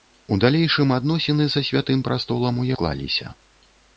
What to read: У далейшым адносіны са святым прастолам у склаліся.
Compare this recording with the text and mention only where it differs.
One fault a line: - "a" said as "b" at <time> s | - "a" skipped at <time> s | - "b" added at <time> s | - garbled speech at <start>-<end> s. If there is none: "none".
none